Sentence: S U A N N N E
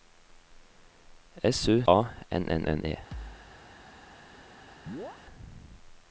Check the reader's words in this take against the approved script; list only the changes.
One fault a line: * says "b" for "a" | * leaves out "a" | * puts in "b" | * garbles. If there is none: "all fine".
all fine